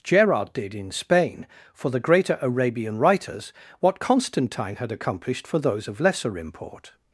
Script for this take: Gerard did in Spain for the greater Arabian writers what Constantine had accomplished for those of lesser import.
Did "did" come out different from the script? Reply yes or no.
no